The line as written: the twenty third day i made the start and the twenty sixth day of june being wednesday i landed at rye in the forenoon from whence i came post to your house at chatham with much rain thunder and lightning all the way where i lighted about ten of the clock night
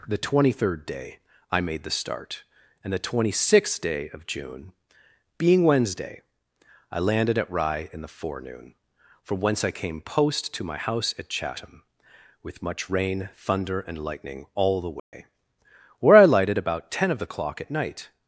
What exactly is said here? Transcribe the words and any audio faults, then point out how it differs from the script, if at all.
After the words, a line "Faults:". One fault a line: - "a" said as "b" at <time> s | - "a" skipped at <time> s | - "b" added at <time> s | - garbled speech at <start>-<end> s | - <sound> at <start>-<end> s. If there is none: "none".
the twenty third day i made the start and the twenty sixth day of june being wednesday i landed at rye in the forenoon from whence i came post to my house at chatham with much rain thunder and lightning all the way where i lighted about ten of the clock at night
Faults:
- "your" said as "my" at 10.6 s
- dropout at 15.0-15.1 s
- "at" added at 17.6 s